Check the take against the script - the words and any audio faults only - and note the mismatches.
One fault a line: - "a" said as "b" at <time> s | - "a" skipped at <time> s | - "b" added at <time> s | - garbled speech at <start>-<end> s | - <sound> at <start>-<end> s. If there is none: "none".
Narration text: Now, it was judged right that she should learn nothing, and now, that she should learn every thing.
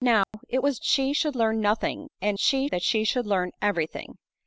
- dropout at 0.2-0.3 s
- "judged right that" skipped at 0.8 s
- "now" said as "she" at 2.4 s